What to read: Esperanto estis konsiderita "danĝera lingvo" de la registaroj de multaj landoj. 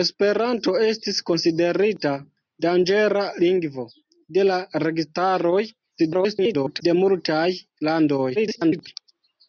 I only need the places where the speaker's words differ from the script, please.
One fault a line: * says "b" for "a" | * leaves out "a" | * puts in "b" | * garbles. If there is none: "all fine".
* garbles
* garbles